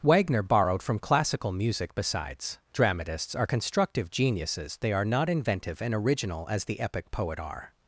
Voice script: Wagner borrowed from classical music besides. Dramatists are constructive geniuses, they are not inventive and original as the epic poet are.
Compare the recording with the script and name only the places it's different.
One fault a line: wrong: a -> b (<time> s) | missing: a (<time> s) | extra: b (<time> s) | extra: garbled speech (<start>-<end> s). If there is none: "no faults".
no faults